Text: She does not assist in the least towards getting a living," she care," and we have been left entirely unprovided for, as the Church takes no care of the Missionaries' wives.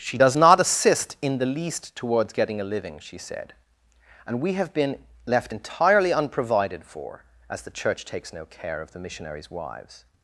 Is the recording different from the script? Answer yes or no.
yes